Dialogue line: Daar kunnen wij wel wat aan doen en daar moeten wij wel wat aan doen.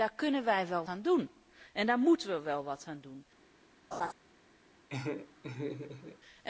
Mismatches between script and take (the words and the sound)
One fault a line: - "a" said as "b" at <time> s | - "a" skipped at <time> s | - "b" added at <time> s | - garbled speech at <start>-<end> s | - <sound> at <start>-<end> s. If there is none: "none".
- "wat" skipped at 0.8 s
- laugh at 3.9-4.1 s
- laugh at 4.9-6.2 s